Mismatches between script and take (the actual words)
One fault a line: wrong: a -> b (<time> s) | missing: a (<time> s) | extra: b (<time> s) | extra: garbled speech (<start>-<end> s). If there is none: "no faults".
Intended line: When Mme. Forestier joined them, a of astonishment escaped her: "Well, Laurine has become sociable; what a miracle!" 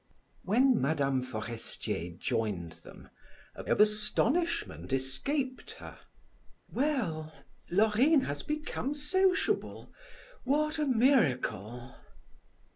no faults